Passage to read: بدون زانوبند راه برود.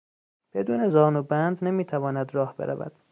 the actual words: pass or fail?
fail